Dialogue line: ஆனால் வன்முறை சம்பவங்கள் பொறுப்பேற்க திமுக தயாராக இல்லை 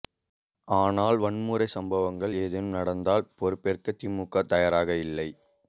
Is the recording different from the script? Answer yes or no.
yes